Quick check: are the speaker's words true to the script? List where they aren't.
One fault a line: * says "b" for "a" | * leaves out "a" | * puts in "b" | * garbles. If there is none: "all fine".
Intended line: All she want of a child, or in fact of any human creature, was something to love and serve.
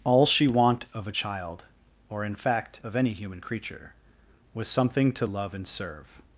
all fine